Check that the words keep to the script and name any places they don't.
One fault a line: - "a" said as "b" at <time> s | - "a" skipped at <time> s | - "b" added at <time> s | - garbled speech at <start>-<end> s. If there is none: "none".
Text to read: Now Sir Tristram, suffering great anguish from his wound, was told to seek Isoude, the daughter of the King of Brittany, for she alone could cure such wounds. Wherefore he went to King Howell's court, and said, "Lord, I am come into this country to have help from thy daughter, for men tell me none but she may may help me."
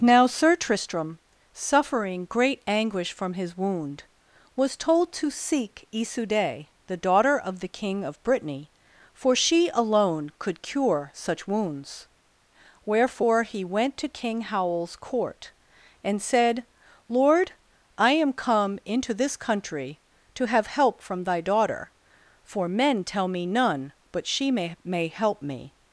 none